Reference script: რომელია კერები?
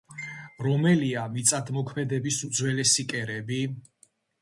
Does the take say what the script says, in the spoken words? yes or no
no